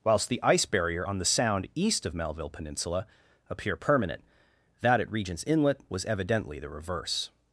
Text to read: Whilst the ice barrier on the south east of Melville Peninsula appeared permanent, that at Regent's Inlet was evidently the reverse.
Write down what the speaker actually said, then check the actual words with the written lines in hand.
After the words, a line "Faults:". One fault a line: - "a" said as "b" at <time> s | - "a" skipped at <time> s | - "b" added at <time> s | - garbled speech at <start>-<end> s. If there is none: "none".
Whilst the ice barrier on the sound east of Melville Peninsula appear permanent, that at Regent's Inlet was evidently the reverse.
Faults:
- "south" said as "sound" at 1.2 s
- "appeared" said as "appear" at 3.5 s